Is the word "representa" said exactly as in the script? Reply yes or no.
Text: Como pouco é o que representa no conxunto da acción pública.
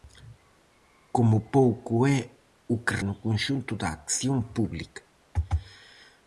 no